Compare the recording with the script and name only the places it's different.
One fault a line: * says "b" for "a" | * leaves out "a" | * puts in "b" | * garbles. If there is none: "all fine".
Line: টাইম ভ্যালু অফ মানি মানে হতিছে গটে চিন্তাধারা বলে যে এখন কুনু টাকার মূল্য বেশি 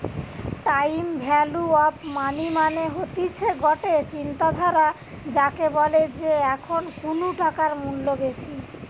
* puts in "যাকে"